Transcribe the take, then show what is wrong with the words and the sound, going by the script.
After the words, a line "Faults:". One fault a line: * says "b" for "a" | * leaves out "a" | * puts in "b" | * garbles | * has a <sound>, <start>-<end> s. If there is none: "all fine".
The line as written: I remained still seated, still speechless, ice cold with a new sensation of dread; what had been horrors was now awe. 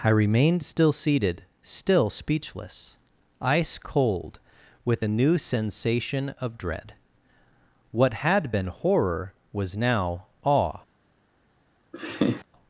I remained still seated, still speechless, ice cold with a new sensation of dread; what had been horror was now awe.
Faults:
* says "horror" for "horrors"
* has a laugh, 11.9-12.5 s